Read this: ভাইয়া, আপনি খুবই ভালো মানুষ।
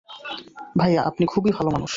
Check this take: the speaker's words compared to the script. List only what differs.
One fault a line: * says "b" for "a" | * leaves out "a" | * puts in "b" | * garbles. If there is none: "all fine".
all fine